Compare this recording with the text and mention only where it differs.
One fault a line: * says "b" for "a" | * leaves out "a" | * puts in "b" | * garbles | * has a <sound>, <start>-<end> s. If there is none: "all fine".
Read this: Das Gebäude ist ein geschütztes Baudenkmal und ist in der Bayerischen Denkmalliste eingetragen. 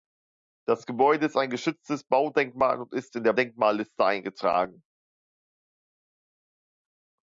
* leaves out "Bayerischen"